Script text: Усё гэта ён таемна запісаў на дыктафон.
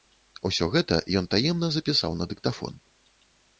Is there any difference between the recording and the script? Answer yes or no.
no